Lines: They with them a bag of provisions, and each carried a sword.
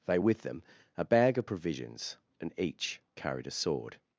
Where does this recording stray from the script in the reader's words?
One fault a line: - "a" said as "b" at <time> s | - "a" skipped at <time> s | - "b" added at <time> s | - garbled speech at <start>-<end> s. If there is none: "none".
none